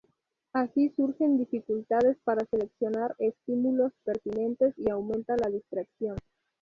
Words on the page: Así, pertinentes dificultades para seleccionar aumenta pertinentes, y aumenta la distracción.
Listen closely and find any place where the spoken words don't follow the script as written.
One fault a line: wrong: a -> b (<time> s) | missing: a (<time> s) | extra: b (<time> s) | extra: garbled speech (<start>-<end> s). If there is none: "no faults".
wrong: pertinentes -> surgen (0.9 s)
wrong: aumenta -> estímulos (3.2 s)